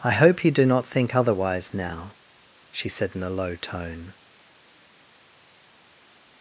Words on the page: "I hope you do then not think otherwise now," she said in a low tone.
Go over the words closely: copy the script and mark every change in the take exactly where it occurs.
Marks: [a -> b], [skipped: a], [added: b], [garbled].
"I hope you do [skipped: then] not think otherwise now," she said in a low tone.